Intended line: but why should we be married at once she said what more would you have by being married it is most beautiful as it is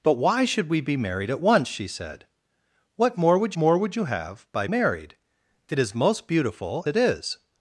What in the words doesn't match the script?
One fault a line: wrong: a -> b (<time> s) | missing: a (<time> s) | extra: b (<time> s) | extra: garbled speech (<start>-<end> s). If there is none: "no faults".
extra: more would (3.6 s)
missing: being (4.7 s)
missing: as (6.9 s)